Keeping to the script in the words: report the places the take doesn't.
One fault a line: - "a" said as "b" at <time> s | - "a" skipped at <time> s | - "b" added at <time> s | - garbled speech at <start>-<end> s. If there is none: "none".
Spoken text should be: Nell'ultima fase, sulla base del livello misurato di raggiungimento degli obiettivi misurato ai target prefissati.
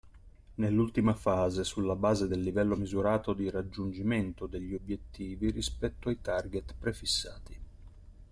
- "misurato" said as "rispetto" at 5.5 s